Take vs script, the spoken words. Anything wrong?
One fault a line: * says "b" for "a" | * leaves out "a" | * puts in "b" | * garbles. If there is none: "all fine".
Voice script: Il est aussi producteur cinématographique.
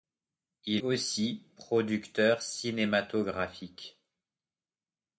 * leaves out "est"